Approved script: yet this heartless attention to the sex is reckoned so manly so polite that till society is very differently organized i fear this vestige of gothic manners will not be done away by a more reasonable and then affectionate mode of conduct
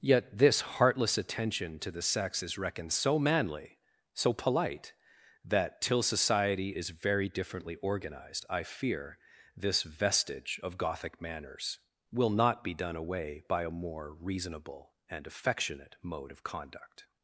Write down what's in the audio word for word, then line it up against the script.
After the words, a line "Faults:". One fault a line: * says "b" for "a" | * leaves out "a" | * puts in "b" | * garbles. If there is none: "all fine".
yet this heartless attention to the sex is reckoned so manly so polite that till society is very differently organized i fear this vestige of gothic manners will not be done away by a more reasonable and affectionate mode of conduct
Faults:
* leaves out "then"